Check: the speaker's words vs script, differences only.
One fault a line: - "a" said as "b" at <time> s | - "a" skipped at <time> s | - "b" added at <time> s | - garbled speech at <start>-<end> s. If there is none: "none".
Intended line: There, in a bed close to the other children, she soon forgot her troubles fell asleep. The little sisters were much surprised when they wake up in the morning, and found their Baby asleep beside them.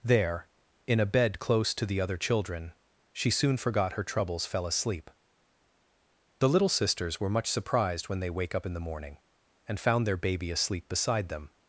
none